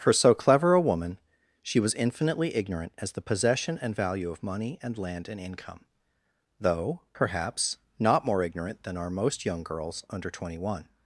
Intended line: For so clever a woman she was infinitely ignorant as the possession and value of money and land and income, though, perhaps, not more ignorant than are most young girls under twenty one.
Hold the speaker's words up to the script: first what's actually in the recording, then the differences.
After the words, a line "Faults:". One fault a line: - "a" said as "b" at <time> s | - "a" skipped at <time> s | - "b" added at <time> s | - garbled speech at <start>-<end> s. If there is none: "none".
For so clever a woman she was infinitely ignorant as the possession and value of money and land and income, though, perhaps, not more ignorant than are most young girls under twenty one.
Faults:
none